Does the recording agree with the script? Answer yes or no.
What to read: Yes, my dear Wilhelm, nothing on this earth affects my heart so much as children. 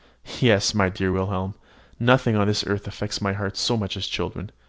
yes